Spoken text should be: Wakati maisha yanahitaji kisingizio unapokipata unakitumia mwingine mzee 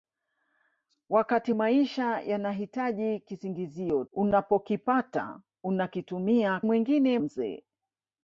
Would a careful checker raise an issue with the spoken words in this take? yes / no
no